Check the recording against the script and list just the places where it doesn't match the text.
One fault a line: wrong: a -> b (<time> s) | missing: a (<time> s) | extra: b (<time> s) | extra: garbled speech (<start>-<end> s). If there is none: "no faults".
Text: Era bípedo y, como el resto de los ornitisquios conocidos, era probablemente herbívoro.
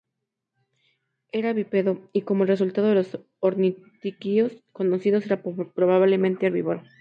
no faults